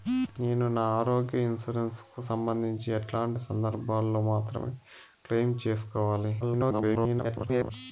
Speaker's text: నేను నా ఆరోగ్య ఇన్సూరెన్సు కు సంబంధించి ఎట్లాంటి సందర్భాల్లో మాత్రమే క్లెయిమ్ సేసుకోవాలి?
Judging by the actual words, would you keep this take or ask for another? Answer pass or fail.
fail